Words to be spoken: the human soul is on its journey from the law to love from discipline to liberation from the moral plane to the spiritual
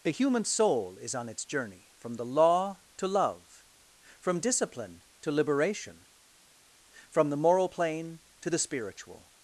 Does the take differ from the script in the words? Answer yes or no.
no